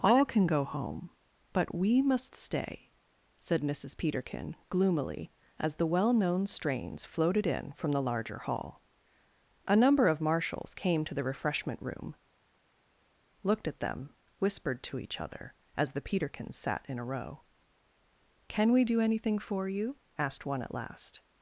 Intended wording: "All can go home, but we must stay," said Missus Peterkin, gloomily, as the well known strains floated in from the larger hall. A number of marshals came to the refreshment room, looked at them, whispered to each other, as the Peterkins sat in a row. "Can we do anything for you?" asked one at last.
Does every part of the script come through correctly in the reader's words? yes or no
yes